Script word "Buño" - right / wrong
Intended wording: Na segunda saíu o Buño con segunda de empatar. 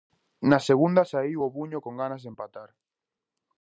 right